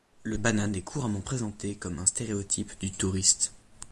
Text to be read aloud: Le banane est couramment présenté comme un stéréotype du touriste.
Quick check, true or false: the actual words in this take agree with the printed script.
true